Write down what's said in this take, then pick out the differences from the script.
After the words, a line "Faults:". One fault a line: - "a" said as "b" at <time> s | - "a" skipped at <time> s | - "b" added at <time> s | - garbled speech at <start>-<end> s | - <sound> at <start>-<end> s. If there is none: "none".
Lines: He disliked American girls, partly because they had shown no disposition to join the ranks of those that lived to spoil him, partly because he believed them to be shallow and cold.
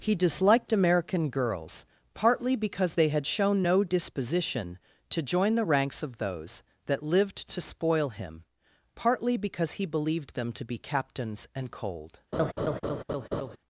He disliked American girls, partly because they had shown no disposition to join the ranks of those that lived to spoil him, partly because he believed them to be captains and cold.
Faults:
- "shallow" said as "captains" at 10.8 s
- laugh at 12.3-13.6 s